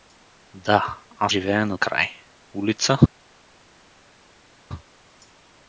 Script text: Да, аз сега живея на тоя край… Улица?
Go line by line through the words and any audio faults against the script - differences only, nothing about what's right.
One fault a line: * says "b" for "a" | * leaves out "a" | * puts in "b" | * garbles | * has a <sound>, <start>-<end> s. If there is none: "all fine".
* leaves out "сега"
* leaves out "тоя"